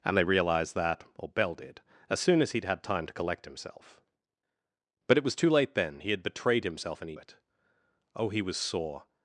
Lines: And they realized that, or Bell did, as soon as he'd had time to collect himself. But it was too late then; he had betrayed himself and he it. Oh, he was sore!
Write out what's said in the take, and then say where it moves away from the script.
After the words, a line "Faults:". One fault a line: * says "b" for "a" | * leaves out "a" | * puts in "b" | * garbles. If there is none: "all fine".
And they realized that, or Bell did, as soon as he'd had time to collect himself. But it was too late then; he had betrayed himself and he it. Oh, he was sore!
Faults:
all fine